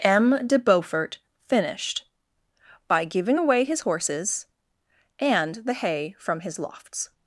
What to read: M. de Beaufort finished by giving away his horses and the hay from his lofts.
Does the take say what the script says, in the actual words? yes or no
yes